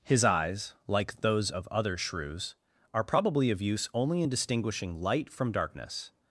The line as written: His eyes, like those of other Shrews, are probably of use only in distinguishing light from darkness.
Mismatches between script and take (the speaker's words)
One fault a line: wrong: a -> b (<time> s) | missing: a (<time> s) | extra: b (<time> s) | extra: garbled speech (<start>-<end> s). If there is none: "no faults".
no faults